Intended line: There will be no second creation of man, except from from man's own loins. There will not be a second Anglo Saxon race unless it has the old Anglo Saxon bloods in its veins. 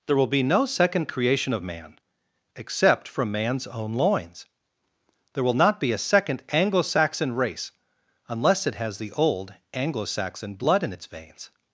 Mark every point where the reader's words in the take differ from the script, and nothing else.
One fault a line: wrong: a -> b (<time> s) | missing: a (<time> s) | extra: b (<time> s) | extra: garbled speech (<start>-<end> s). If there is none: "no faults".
missing: from (3.3 s)
wrong: bloods -> blood (10.5 s)